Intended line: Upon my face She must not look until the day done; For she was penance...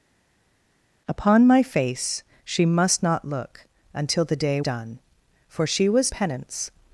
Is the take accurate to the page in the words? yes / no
yes